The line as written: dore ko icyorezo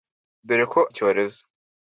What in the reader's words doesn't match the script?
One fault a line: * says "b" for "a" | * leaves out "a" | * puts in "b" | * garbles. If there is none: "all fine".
all fine